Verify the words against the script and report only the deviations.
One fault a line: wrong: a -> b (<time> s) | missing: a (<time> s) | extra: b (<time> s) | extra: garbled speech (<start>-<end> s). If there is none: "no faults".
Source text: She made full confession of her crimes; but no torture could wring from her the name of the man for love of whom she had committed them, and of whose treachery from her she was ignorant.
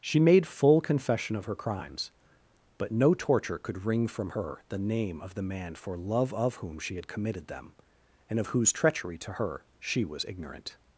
wrong: from -> to (9.2 s)